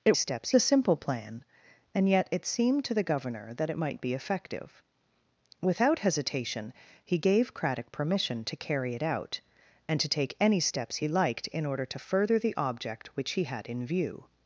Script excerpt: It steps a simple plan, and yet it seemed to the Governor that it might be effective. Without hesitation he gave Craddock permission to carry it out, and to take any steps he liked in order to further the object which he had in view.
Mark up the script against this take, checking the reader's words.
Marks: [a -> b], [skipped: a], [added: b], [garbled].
It steps a simple plan, and yet it seemed to the Governor that it might be effective. Without hesitation he gave Craddock permission to carry it out, and to take any steps he liked in order to further the object which he had in view.